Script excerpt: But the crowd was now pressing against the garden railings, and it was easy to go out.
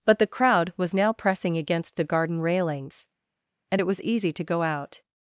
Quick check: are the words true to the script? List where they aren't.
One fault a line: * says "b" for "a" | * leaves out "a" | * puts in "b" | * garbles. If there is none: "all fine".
all fine